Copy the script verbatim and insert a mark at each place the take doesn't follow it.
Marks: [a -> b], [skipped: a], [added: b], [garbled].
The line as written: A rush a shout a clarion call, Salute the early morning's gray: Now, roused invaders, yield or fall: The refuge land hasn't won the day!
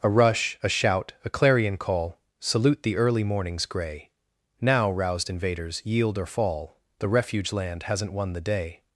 A rush a shout a clarion call, Salute the early morning's gray: Now, roused invaders, yield or fall: The refuge land hasn't won the day!